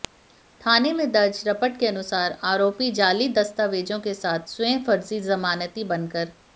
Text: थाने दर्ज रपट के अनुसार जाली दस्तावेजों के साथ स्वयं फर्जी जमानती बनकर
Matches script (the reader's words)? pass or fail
fail